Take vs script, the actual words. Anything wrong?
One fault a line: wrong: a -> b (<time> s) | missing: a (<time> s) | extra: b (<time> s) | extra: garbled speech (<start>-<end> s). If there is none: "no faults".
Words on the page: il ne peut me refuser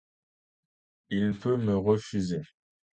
missing: ne (1.3 s)